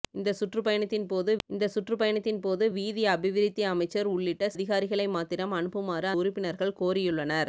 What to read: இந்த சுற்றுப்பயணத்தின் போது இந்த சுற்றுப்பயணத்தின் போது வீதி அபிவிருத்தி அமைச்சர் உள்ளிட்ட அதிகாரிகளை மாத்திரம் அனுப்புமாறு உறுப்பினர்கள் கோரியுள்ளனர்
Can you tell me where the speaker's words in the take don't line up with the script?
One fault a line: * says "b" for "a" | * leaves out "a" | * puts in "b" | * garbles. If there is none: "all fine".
all fine